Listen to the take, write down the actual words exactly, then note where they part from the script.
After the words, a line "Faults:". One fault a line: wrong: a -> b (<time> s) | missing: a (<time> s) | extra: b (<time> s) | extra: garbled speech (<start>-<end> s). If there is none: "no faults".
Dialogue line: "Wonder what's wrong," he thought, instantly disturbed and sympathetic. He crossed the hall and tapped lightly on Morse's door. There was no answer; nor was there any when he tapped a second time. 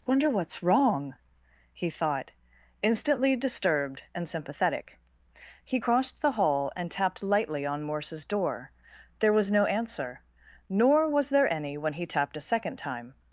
"Wonder what's wrong," he thought, instantly disturbed and sympathetic. He crossed the hall and tapped lightly on Morse's door. There was no answer; nor was there any when he tapped a second time.
Faults:
no faults